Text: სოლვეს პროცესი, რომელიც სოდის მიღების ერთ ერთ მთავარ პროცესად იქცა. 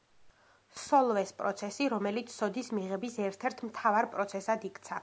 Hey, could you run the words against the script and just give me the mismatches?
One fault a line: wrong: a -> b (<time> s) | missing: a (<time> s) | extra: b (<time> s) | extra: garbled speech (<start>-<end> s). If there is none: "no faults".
no faults